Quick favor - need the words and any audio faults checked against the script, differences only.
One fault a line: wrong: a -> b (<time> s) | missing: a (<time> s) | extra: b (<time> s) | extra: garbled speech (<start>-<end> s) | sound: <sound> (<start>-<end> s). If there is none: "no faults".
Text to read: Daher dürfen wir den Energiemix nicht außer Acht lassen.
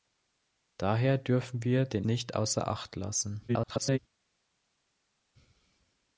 missing: Energiemix (2.0 s)
extra: garbled speech (3.5-4.0 s)